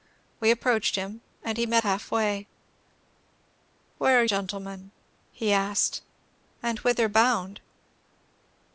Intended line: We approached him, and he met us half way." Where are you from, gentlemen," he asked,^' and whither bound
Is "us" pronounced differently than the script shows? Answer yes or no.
yes